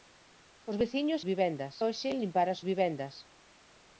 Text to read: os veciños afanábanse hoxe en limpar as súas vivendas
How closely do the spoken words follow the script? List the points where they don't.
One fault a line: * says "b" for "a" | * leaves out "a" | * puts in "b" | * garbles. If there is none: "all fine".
* says "vivendas" for "afanábanse"
* leaves out "súas"